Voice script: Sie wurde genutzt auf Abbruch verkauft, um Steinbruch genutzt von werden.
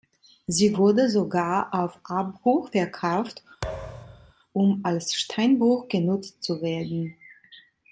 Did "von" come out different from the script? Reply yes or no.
yes